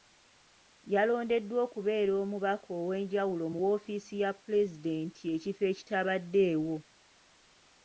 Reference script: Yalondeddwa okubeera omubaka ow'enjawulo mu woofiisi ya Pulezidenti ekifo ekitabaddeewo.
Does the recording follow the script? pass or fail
pass